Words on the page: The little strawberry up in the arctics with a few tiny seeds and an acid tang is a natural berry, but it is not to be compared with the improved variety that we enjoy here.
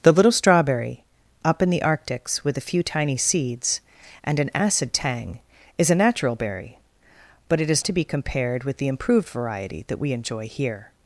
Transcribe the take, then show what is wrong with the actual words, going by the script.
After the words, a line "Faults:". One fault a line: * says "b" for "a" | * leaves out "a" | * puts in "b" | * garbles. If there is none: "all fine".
The little strawberry up in the arctics with a few tiny seeds and an acid tang is a natural berry, but it is to be compared with the improved variety that we enjoy here.
Faults:
* leaves out "not"